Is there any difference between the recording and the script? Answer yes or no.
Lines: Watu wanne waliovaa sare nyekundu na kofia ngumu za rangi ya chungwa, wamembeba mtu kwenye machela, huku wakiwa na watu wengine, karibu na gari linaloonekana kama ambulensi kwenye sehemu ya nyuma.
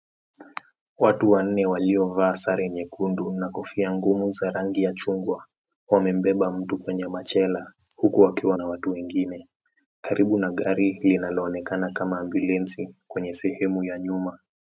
no